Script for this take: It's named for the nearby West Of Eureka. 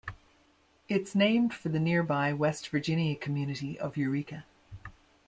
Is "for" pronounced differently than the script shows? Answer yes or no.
no